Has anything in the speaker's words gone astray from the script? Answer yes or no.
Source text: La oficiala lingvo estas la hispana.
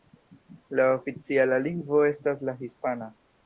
no